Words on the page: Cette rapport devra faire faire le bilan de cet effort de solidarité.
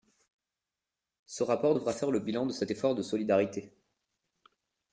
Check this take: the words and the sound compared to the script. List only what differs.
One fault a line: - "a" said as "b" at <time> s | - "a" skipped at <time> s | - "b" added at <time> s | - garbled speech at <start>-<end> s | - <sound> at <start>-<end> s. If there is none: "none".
- "Cette" said as "Ce" at 1.3 s
- "faire" skipped at 2.1 s